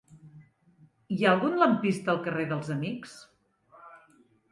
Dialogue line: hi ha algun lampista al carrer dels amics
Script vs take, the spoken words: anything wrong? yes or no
no